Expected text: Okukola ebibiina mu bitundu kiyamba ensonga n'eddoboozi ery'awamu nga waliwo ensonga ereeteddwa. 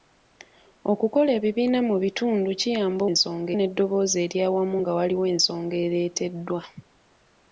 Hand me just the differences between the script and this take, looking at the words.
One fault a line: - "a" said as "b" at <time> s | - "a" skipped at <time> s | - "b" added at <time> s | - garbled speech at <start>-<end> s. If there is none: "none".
none